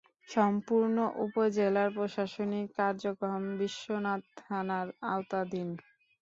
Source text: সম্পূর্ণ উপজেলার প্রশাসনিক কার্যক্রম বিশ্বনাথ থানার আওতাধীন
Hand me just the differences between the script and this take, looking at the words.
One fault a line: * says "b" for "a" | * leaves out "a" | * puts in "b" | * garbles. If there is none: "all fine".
all fine